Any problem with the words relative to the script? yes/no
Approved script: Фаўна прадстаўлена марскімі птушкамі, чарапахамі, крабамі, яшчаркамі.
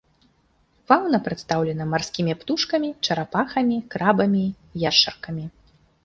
no